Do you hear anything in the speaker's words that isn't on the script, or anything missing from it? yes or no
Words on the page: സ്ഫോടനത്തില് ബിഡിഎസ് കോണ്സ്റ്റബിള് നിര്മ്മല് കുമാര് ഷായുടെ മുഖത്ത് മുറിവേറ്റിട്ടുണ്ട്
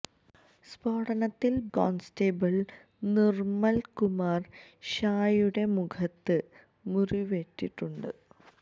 yes